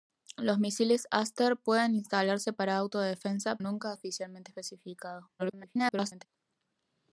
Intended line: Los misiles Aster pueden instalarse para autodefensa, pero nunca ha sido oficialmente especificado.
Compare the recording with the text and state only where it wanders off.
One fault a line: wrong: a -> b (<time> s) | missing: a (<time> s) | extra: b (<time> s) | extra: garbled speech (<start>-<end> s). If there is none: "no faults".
missing: pero (3.6 s)
missing: sido (4.0 s)
extra: garbled speech (5.4-6.3 s)